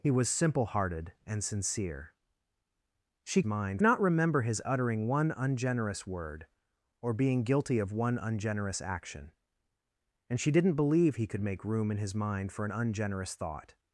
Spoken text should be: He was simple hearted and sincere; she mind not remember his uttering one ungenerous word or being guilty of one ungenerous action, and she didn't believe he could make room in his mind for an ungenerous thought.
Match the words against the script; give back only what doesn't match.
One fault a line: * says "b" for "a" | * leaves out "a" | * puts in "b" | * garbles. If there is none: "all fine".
all fine